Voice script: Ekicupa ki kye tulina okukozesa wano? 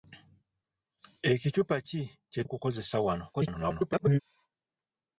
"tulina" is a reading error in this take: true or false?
true